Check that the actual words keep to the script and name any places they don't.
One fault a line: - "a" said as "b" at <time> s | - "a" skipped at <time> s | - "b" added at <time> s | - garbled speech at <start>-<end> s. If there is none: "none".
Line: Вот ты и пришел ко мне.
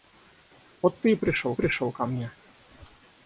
- "пришел" added at 1.5 s